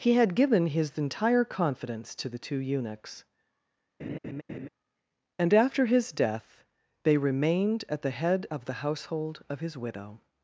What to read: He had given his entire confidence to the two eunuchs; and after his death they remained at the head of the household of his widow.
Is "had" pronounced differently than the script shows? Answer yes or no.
no